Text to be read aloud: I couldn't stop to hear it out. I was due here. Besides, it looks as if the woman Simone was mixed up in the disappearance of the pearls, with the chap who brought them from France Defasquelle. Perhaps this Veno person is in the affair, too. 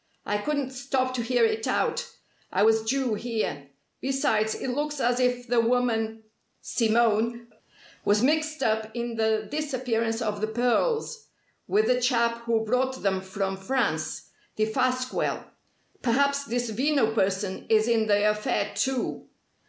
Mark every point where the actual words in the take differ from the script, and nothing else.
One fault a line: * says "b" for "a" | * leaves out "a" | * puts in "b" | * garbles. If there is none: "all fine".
all fine